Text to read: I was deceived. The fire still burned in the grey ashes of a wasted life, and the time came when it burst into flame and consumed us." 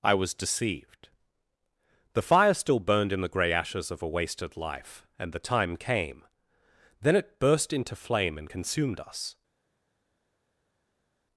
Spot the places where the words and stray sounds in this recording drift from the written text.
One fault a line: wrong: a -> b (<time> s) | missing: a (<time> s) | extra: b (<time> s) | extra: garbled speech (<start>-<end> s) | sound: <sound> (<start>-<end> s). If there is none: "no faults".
wrong: when -> then (7.0 s)